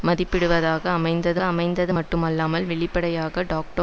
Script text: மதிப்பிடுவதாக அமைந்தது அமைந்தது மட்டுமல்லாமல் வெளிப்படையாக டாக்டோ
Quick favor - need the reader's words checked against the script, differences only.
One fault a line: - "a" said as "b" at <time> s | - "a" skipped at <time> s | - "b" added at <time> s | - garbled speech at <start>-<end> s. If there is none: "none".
none